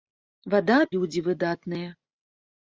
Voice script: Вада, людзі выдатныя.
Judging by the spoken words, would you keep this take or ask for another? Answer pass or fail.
pass